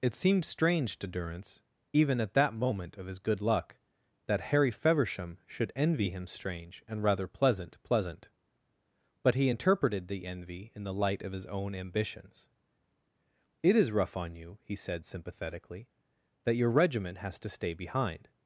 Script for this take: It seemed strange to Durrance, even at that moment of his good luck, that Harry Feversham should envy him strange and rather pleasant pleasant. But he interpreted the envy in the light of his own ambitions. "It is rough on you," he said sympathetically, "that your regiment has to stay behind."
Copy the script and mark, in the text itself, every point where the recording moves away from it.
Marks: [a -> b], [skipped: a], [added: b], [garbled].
It seemed strange to Durrance, even at that moment of his good luck, that Harry Feversham should envy him strange and rather pleasant pleasant. But he interpreted the envy in the light of his own ambitions. "It is rough on you," he said sympathetically, "that your regiment has to stay behind."